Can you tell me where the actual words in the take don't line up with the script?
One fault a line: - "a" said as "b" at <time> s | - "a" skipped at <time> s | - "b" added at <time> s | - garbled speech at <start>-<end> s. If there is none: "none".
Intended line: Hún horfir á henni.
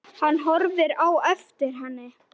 - "Hún" said as "Hann" at 0.2 s
- "eftir" added at 1.3 s